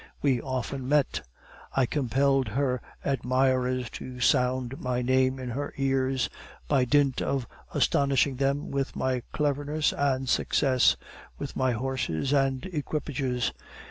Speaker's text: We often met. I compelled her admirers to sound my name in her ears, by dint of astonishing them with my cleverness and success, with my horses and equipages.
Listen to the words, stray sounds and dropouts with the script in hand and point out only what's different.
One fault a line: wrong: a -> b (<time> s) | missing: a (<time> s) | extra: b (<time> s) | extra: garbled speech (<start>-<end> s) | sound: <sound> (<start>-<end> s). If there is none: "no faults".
no faults